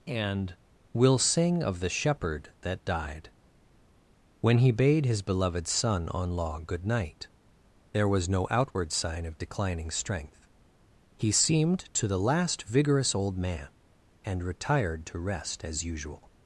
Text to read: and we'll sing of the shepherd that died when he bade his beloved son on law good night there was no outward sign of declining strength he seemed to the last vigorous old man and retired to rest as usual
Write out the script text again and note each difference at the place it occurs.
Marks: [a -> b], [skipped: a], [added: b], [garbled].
and we'll sing of the shepherd that died when he bade his beloved son on law good night there was no outward sign of declining strength he seemed to the last vigorous old man and retired to rest as usual